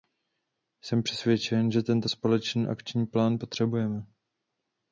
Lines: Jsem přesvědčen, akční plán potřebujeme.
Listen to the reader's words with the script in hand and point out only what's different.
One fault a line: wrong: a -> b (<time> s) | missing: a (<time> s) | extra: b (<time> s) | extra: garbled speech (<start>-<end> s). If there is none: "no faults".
extra: že tento společný (1.7 s)